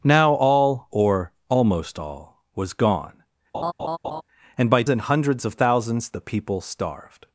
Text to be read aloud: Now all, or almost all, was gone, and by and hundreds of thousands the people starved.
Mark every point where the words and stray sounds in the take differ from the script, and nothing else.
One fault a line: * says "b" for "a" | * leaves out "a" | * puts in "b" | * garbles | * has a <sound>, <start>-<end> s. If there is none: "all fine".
* has a laugh, 3.5-4.2 s